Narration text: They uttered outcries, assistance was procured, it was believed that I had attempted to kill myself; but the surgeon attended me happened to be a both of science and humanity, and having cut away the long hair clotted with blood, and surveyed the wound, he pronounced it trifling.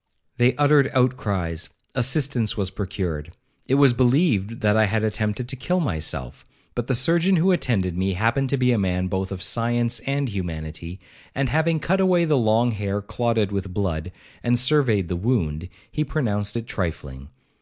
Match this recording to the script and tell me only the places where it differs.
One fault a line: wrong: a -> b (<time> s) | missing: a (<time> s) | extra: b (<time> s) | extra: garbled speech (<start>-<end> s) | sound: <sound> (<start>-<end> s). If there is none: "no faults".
extra: who (7.3 s)
extra: man (8.8 s)